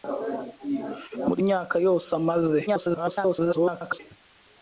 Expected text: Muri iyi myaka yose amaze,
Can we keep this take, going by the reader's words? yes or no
no